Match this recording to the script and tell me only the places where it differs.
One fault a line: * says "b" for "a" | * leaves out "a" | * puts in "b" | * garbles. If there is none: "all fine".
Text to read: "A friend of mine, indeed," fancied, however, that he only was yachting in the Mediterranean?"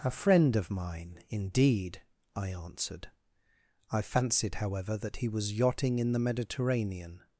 * puts in "I answered I"
* leaves out "only"